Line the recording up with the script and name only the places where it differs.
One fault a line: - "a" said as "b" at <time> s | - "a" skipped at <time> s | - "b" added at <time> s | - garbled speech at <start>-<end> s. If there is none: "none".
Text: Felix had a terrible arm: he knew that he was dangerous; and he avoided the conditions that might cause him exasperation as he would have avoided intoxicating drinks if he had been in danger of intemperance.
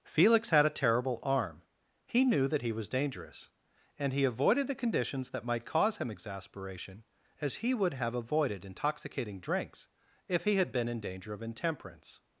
none